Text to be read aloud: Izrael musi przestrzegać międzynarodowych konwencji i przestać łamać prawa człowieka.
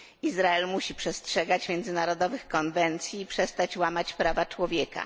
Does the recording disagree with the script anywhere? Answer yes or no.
no